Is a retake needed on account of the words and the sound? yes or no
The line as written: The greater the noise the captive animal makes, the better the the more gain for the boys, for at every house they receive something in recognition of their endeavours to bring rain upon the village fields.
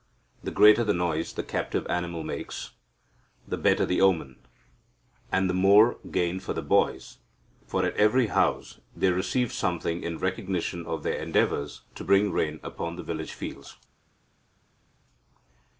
yes